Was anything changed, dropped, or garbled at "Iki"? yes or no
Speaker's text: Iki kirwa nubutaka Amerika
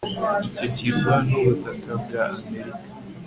yes